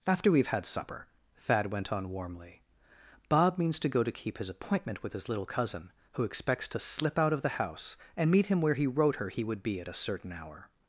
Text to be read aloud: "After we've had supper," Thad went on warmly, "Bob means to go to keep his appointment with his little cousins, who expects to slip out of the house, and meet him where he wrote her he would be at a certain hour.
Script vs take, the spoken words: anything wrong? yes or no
yes